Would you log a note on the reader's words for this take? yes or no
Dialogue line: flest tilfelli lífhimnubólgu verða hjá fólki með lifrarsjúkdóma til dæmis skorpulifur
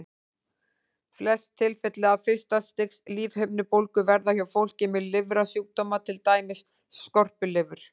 yes